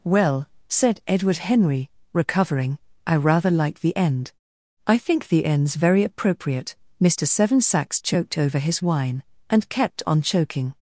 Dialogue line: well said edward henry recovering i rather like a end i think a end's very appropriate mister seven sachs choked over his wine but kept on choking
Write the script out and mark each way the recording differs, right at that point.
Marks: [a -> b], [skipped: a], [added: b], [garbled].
well said edward henry recovering i rather like [a -> the] end i think [a -> the] end's very appropriate mister seven sachs choked over his wine [but -> and] kept on choking